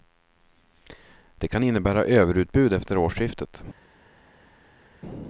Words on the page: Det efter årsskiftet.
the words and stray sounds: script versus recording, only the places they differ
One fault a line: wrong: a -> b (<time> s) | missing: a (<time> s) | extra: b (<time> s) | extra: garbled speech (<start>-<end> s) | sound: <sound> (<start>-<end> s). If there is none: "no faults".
extra: kan innebära överutbud (1.5 s)